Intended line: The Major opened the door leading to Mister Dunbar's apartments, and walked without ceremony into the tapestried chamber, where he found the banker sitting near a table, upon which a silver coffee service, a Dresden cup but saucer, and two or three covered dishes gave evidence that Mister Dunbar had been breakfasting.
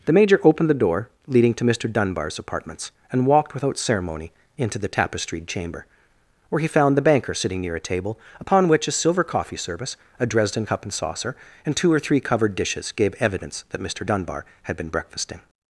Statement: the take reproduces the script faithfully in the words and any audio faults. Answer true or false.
false